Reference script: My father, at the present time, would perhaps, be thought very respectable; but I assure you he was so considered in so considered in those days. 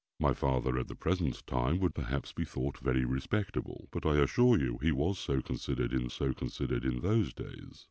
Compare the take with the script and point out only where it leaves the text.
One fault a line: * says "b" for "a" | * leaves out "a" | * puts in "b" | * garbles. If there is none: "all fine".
all fine